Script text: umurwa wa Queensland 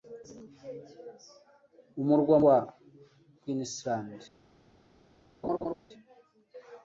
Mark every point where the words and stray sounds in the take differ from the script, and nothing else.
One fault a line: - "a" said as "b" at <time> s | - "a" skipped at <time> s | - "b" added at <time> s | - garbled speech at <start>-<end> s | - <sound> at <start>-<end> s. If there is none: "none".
- laugh at 5.4-5.7 s